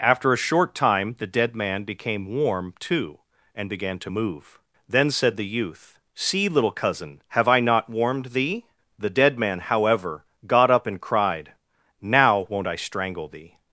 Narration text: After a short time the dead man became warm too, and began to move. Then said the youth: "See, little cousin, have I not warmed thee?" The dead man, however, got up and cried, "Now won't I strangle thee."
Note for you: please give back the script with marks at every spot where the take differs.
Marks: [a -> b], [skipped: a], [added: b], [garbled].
After a short time the dead man became warm too, and began to move. Then said the youth: "See, little cousin, have I not warmed thee?" The dead man, however, got up and cried, "Now won't I strangle thee."